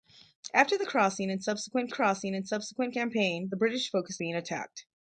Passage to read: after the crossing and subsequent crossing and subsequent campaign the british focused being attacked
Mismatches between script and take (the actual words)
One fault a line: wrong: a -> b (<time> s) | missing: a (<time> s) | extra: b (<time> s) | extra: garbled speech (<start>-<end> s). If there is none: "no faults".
no faults